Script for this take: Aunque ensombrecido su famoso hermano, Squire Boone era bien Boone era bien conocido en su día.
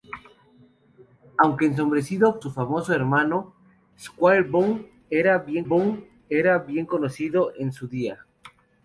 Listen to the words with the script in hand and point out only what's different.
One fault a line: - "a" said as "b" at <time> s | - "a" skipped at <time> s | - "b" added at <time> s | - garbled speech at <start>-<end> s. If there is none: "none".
none